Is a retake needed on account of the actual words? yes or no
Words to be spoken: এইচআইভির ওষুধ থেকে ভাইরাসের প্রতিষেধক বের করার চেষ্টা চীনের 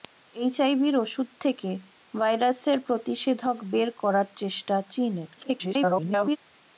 yes